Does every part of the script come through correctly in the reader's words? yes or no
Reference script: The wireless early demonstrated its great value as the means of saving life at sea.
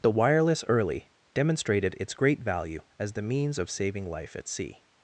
yes